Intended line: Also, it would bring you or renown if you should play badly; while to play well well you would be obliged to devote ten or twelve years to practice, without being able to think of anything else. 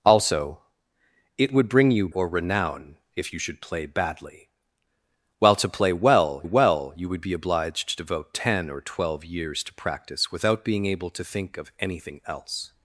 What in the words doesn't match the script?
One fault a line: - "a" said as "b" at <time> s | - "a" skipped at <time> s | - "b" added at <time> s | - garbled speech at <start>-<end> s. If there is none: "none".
none